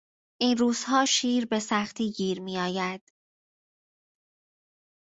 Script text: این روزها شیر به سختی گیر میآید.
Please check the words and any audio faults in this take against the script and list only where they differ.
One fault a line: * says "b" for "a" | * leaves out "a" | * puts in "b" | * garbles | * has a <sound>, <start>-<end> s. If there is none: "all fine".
all fine